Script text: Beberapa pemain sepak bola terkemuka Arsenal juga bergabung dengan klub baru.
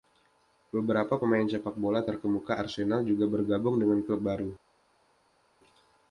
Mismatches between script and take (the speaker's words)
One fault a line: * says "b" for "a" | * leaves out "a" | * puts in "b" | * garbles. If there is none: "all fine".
all fine